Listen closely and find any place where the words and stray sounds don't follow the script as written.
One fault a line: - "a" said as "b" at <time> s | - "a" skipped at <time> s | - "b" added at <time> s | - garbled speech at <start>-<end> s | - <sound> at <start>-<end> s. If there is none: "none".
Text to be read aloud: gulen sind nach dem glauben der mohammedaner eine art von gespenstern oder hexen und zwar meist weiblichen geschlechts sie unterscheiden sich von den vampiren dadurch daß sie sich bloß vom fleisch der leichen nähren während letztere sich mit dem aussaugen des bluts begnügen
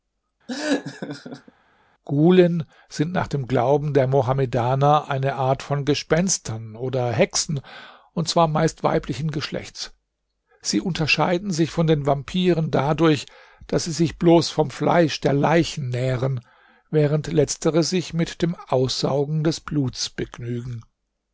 - laugh at 0.5-1.5 s